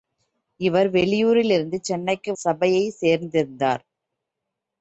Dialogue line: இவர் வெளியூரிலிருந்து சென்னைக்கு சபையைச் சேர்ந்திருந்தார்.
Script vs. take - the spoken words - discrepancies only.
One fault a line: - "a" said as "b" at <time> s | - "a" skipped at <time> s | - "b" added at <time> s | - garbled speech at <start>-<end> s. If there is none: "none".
none